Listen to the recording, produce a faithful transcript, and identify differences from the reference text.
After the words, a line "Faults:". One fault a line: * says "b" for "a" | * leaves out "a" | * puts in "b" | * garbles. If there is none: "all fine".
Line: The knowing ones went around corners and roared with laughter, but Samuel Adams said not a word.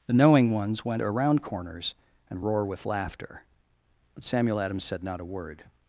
The knowing ones went around corners and roar with laughter, but Samuel Adams said not a word.
Faults:
* says "roar" for "roared"